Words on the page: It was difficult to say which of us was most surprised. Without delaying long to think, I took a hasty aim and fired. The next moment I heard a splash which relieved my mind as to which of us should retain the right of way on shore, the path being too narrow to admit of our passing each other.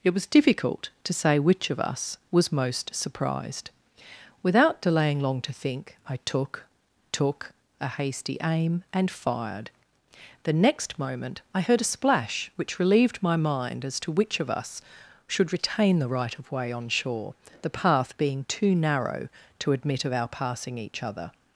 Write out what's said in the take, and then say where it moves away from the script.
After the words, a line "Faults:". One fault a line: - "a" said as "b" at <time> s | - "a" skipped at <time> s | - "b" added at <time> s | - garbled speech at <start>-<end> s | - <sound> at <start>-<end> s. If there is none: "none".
It was difficult to say which of us was most surprised. Without delaying long to think, I took took a hasty aim and fired. The next moment I heard a splash which relieved my mind as to which of us should retain the right of way on shore, the path being too narrow to admit of our passing each other.
Faults:
- "took" added at 7.1 s